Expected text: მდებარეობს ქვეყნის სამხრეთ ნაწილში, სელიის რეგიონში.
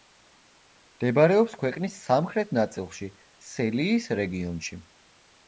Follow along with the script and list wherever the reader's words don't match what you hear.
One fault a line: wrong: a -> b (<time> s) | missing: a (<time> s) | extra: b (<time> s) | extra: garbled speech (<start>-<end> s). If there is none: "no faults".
no faults